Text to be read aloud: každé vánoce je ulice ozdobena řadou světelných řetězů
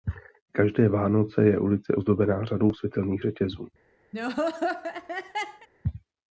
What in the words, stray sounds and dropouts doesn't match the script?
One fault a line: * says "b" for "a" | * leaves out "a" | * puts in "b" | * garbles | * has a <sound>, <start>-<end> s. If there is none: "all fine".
* has a laugh, 4.1-5.7 s